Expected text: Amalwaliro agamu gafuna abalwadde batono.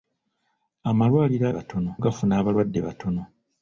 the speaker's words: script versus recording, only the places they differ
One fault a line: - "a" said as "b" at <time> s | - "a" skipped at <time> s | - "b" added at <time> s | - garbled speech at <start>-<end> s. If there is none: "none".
- "agamu" said as "batono" at 1.6 s